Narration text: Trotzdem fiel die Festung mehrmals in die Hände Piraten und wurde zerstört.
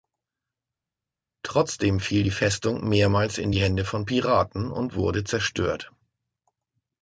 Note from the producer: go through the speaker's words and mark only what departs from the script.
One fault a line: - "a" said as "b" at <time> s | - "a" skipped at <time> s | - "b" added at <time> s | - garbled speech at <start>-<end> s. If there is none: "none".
- "von" added at 3.8 s